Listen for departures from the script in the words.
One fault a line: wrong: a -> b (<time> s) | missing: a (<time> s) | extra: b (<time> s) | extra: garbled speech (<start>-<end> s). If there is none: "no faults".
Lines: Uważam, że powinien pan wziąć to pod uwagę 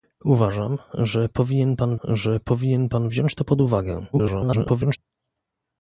extra: że powinien pan (2.0 s)
extra: garbled speech (4.1-5.0 s)